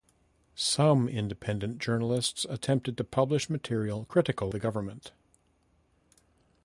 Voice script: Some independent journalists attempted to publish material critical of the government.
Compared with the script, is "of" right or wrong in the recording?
wrong